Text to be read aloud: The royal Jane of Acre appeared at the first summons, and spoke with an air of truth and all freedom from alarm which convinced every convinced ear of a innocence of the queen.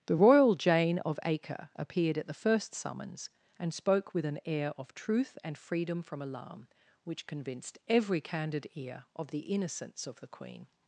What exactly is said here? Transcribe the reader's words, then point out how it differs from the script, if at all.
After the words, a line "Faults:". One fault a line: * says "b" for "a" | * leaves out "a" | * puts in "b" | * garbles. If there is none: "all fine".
The royal Jane of Acre appeared at the first summons, and spoke with an air of truth and freedom from alarm which convinced every candid ear of the innocence of the queen.
Faults:
* leaves out "all"
* says "candid" for "convinced"
* says "the" for "a"